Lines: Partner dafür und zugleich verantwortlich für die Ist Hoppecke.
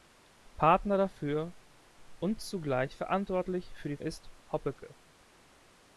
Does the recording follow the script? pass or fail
pass